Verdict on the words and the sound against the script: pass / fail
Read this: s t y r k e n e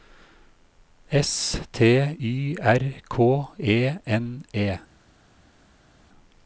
pass